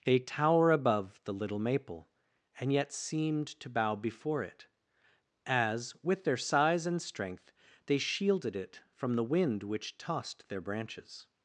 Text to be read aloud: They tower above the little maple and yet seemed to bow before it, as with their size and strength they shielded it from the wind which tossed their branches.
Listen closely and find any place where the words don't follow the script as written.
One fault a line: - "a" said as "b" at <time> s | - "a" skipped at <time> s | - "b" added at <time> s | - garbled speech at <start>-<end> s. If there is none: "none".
none